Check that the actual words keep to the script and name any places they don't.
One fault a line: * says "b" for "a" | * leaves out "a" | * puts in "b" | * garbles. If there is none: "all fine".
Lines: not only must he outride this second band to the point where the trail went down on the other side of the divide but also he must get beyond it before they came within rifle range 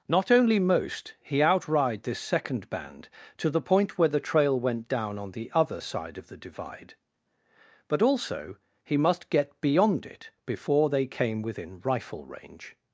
* says "most" for "must"